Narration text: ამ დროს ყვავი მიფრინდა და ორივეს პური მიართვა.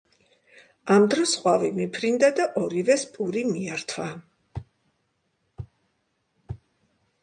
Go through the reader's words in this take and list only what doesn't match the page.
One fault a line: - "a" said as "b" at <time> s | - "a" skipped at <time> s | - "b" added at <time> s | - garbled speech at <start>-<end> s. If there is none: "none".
none